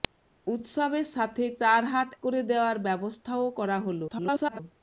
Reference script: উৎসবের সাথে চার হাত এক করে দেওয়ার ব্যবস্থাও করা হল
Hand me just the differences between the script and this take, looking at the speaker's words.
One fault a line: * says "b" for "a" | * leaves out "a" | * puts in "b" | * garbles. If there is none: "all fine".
* leaves out "এক"
* garbles